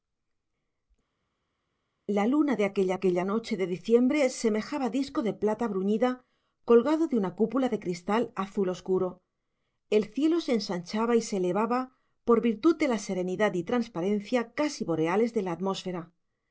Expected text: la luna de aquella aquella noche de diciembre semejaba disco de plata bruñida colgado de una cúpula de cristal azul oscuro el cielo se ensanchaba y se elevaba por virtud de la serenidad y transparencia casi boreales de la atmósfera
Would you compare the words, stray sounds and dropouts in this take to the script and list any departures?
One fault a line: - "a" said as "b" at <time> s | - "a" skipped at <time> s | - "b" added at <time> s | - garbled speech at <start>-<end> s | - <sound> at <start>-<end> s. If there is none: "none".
none